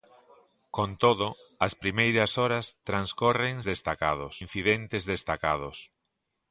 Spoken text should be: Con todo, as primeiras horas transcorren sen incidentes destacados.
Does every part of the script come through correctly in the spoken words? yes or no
no